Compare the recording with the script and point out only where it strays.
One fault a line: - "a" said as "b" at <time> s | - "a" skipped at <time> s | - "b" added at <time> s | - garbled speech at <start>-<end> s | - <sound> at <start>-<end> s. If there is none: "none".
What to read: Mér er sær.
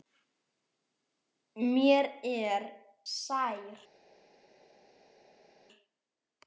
none